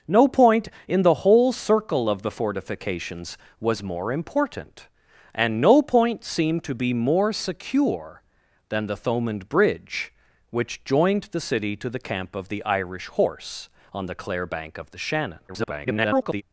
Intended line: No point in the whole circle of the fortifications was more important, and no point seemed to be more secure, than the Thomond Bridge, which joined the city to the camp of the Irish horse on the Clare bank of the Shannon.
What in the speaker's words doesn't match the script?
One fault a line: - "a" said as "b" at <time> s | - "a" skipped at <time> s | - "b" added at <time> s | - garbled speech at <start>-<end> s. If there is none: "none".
- garbled speech at 15.5-16.4 s